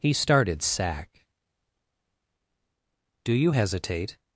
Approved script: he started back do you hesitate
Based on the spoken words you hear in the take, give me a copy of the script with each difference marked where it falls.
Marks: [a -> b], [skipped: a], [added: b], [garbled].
he started [back -> sack] do you hesitate